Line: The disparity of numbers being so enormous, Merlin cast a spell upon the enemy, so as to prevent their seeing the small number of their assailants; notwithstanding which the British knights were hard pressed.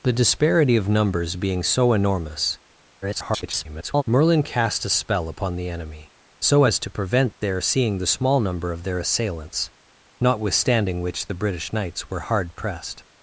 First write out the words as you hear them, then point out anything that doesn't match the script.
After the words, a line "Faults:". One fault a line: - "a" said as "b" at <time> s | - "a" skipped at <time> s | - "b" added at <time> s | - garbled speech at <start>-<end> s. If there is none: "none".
The disparity of numbers being so enormous, [garbled] Merlin cast a spell upon the enemy, so as to prevent their seeing the small number of their assailants; notwithstanding which the British knights were hard pressed.
Faults:
- garbled speech at 3.0-4.0 s